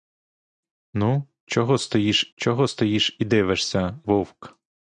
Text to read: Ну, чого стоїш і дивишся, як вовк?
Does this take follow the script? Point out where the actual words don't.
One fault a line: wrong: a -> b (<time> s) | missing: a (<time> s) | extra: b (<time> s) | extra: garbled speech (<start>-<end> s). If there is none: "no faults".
extra: чого стоїш (2.3 s)
missing: як (4.0 s)